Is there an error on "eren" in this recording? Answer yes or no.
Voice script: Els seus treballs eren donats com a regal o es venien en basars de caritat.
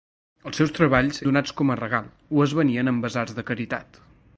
yes